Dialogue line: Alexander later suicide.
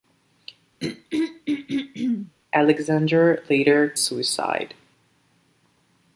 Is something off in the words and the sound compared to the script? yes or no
yes